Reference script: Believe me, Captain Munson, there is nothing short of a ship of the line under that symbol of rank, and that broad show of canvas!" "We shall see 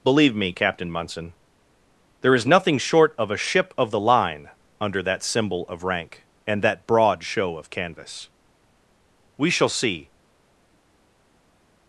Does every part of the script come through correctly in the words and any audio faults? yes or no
yes